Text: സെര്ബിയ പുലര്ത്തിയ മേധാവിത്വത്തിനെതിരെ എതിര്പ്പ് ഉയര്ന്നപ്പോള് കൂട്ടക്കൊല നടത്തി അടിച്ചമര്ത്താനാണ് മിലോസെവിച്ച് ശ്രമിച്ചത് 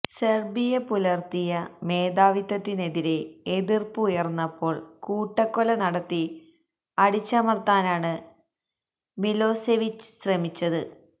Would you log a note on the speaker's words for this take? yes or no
no